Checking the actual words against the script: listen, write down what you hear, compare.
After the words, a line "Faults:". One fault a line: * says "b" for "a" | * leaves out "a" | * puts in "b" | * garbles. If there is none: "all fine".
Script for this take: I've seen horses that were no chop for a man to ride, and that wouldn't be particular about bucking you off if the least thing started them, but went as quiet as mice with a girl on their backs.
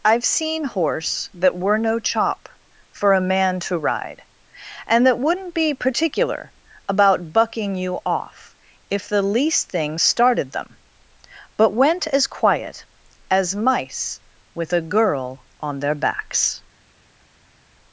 I've seen horse that were no chop for a man to ride, and that wouldn't be particular about bucking you off if the least thing started them, but went as quiet as mice with a girl on their backs.
Faults:
* says "horse" for "horses"